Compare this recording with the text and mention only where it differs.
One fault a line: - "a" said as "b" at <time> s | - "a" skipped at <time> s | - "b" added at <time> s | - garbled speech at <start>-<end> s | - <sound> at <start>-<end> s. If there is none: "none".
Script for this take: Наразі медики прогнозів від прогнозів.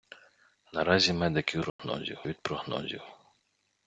- dropout at 1.7-1.8 s